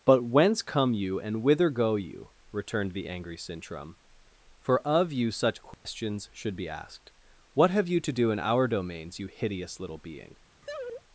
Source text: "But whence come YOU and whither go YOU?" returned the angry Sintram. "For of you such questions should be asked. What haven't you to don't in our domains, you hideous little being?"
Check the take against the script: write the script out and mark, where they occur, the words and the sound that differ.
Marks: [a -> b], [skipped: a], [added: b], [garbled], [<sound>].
"But whence come YOU and whither go YOU?" returned the angry Sintram. "For of you such questions [dropout] should be asked. What [haven't -> have] you to [don't -> do] in our domains, you hideous little being?" [laugh]